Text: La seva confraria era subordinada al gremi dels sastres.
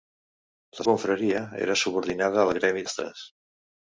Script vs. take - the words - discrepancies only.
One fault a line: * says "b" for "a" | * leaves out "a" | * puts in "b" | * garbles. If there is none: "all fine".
* leaves out "seva"
* leaves out "dels"